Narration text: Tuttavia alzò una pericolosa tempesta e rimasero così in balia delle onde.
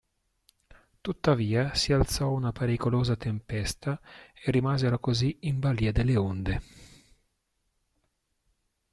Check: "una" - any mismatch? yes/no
no